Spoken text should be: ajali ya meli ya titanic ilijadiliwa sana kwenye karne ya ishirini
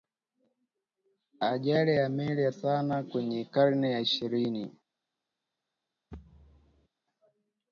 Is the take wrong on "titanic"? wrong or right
wrong